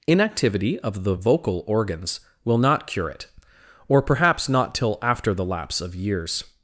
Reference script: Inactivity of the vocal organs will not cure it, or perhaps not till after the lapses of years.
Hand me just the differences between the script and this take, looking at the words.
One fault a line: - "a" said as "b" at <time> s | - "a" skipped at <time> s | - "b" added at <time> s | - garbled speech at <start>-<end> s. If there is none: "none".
- "lapses" said as "lapse" at 5.5 s